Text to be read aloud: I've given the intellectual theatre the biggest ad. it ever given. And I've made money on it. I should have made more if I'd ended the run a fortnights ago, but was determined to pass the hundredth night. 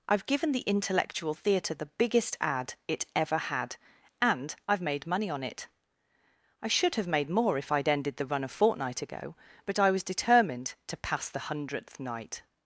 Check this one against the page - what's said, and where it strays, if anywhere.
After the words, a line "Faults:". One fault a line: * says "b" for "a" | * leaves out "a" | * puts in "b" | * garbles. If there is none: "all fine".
I've given the intellectual theatre the biggest ad. it ever had. And I've made money on it. I should have made more if I'd ended the run a fortnight ago, but I was determined to pass the hundredth night.
Faults:
* says "had" for "given"
* says "fortnight" for "fortnights"
* puts in "I"